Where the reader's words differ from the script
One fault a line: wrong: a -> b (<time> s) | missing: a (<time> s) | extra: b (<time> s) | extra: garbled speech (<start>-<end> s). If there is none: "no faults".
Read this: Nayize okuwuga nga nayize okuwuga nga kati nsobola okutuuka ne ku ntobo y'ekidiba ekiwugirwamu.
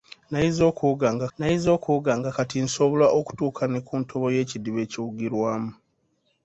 no faults